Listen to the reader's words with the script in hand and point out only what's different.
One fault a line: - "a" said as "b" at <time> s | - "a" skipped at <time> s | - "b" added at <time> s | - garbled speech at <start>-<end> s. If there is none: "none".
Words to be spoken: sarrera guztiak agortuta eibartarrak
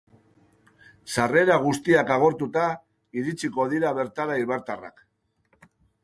- "iritsiko dira bertara" added at 3.2 s